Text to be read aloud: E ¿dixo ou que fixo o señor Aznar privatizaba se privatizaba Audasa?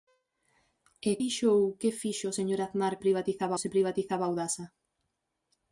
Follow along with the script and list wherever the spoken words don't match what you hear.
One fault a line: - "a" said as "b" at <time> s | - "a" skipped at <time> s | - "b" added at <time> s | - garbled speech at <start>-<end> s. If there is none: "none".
none